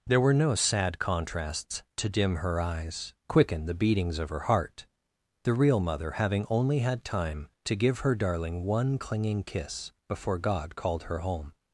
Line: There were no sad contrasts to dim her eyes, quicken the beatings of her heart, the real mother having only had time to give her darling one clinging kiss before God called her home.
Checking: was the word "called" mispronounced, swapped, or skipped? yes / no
no